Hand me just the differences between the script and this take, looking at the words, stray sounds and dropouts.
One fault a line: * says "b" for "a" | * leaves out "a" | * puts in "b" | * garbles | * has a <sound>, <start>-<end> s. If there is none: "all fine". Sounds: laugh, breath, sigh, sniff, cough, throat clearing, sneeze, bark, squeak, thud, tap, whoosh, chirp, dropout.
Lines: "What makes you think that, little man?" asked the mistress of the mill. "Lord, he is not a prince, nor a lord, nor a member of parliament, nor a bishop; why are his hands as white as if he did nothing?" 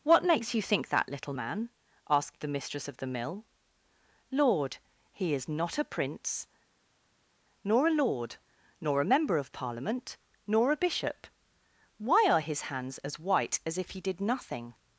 all fine